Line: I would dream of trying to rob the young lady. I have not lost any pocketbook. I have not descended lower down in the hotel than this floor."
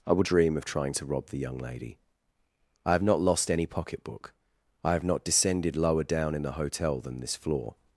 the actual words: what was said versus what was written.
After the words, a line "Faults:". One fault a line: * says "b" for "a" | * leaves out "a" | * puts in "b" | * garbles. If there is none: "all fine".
I would dream of trying to rob the young lady. I have not lost any pocketbook. I have not descended lower down in the hotel than this floor."
Faults:
all fine